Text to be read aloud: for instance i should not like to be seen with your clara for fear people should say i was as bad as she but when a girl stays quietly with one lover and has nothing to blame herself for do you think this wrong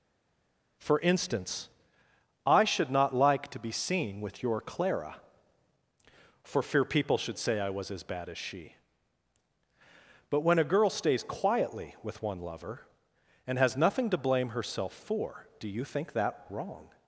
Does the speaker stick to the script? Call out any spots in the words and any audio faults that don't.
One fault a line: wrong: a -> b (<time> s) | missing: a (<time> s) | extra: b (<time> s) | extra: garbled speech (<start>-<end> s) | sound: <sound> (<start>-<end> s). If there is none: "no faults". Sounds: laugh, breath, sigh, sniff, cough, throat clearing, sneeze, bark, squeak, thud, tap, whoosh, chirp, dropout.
wrong: this -> that (16.1 s)